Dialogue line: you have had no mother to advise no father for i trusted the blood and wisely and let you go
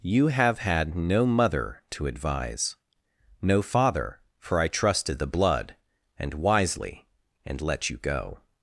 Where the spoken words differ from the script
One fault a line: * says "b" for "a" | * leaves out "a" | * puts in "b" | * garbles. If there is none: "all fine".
all fine